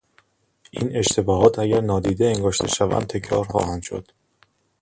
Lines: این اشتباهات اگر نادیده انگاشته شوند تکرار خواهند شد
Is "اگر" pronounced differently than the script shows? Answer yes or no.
no